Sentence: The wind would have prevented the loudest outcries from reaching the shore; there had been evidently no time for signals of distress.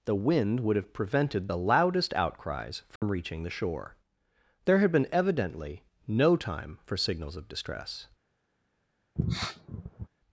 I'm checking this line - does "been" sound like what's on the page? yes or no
yes